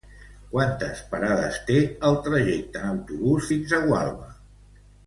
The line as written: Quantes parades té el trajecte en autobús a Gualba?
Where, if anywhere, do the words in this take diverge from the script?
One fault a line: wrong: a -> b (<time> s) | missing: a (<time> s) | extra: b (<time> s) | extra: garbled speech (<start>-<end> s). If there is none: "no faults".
extra: fins (3.5 s)